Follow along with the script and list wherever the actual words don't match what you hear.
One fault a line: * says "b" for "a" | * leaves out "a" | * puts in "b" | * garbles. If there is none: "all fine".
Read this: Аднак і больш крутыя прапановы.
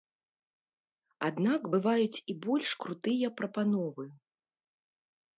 * puts in "бываюць"